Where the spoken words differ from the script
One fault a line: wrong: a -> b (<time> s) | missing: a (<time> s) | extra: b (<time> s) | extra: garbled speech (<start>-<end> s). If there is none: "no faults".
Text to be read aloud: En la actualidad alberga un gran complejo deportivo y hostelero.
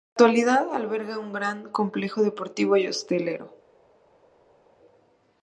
no faults